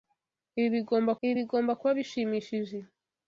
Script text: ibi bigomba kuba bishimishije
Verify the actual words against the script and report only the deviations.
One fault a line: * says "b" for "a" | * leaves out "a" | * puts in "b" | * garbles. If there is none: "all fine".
* puts in "ibi bigomba"